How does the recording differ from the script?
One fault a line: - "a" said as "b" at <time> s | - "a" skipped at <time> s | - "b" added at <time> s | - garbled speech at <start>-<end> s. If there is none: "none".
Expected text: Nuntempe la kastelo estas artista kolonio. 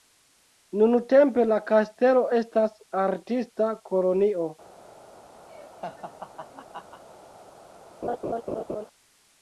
none